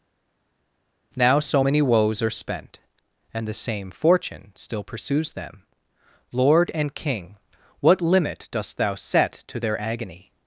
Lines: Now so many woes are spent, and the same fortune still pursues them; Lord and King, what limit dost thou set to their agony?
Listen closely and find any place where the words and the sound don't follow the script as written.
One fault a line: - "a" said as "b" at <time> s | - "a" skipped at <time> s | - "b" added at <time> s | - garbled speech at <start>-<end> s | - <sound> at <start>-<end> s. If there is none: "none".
none